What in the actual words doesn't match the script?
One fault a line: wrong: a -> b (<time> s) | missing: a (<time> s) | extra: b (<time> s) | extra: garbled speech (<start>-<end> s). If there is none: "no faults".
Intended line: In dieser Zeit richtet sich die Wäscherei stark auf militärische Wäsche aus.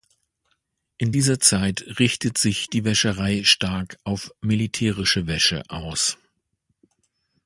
no faults